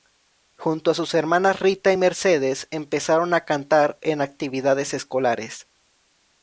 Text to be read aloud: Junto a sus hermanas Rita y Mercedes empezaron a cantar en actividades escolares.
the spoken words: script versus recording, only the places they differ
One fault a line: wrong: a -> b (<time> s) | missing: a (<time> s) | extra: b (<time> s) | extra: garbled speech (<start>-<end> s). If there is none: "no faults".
no faults